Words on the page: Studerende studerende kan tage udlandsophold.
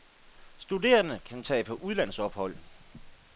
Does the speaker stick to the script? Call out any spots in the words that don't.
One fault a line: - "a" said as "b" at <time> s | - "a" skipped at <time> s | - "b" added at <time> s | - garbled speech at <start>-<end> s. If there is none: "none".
- "studerende" skipped at 1.2 s
- "på" added at 1.6 s